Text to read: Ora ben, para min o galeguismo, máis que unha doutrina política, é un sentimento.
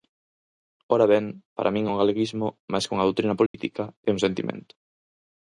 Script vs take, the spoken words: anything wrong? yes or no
no